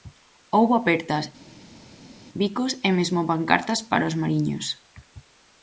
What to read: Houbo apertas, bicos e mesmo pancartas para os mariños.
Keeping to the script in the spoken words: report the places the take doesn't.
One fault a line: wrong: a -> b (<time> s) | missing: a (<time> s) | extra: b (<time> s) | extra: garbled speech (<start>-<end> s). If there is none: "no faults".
no faults